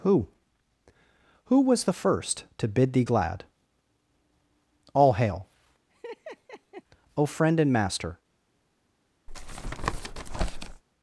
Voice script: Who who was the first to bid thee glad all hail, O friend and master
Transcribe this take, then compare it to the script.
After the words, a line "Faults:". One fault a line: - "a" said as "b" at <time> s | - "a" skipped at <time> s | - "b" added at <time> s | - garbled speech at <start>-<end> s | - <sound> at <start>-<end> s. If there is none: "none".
Who who was the first to bid thee glad all hail, O friend and master
Faults:
- laugh at 5.9-6.8 s
- tap at 9.3-10.8 s